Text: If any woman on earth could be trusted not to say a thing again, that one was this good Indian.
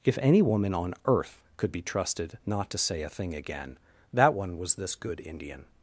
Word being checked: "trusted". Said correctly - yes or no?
yes